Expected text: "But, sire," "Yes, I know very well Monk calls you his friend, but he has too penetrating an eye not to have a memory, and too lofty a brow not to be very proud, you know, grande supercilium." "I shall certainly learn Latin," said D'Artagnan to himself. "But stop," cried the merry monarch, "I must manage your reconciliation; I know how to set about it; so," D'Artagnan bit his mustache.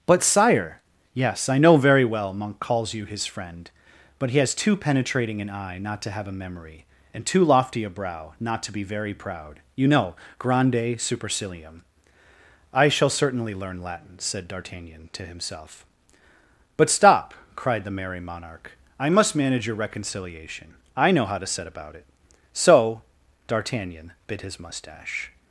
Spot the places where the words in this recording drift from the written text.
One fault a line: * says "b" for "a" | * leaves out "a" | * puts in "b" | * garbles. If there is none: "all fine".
all fine